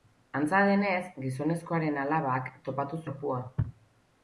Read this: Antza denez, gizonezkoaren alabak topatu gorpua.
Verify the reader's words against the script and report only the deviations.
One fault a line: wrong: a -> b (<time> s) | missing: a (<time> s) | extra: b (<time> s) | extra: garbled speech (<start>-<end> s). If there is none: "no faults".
no faults